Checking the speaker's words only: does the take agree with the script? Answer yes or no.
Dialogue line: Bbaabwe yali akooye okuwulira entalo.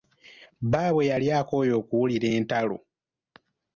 yes